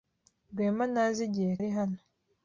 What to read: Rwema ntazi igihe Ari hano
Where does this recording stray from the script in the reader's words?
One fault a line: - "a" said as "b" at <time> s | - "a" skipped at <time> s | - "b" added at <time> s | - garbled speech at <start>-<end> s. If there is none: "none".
none